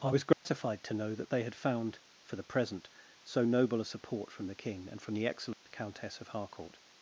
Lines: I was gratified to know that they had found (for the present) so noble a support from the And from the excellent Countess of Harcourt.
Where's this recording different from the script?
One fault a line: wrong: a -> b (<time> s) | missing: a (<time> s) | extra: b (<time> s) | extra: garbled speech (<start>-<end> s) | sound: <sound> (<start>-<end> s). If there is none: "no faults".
sound: dropout (0.3-0.5 s)
extra: King (4.5 s)
sound: dropout (5.5-5.7 s)